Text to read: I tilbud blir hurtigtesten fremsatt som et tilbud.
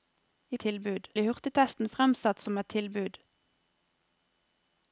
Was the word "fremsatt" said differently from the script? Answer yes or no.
no